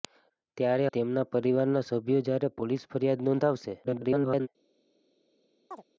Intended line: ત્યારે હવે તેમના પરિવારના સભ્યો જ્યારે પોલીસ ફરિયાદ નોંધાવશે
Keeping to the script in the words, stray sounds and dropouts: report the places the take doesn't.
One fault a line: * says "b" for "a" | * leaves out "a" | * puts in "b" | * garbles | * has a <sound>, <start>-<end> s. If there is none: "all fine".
* leaves out "હવે"
* garbles
* has a chirp, 5.7-5.8 s